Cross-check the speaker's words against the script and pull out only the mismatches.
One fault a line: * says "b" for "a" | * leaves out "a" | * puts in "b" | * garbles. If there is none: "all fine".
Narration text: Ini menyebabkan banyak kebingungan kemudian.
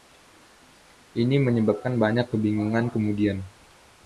all fine